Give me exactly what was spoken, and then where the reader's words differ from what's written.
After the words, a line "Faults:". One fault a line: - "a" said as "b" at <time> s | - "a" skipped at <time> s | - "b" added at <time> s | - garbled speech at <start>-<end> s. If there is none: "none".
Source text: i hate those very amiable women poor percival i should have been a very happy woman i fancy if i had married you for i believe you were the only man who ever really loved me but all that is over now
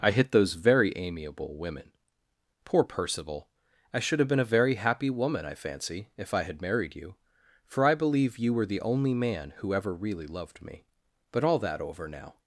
i hit those very amiable women poor percival i should have been a very happy woman i fancy if i had married you for i believe you were the only man who ever really loved me but all that over now
Faults:
- "hate" said as "hit" at 0.1 s
- "is" skipped at 11.8 s